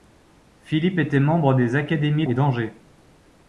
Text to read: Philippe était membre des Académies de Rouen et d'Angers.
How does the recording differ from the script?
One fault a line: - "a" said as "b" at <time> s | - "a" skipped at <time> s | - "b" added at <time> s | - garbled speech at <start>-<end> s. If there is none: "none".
- "de Rouen" skipped at 2.2 s